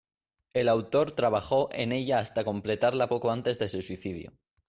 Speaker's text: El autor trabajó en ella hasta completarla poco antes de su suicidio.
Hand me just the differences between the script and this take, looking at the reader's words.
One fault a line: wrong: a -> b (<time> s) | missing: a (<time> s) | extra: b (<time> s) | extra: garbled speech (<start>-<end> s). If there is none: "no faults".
no faults